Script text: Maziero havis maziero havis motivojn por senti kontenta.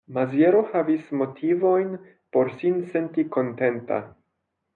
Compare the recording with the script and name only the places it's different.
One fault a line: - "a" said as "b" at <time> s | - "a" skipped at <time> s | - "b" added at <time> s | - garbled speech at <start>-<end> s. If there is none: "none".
- "maziero havis" skipped at 1.1 s
- "sin" added at 2.6 s